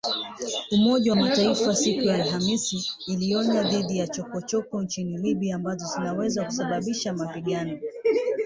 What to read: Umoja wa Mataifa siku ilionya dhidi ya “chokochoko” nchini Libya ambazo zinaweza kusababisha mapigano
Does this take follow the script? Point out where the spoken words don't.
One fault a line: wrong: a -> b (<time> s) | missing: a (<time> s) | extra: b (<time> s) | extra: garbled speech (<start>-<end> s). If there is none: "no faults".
extra: ya Alhamisi (2.0 s)